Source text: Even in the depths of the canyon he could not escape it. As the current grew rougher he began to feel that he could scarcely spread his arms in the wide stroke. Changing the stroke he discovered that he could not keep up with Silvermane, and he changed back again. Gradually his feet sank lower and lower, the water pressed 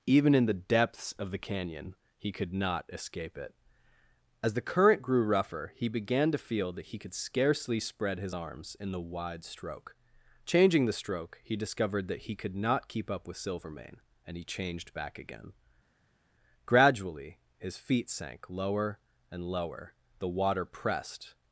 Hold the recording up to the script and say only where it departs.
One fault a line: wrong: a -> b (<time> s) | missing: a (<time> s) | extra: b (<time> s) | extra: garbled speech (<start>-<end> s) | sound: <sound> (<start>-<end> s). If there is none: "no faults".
no faults